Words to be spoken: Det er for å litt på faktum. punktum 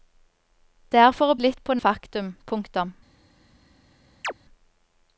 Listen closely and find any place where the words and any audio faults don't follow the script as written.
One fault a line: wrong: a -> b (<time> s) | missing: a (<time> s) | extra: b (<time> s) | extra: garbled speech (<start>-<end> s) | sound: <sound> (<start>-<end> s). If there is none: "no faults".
sound: chirp (4.2-4.3 s)